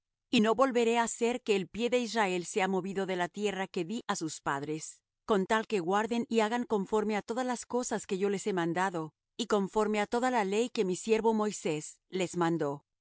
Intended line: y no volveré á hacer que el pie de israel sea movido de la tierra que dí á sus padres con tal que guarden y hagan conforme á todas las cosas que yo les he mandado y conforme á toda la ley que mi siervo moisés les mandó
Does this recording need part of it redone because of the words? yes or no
no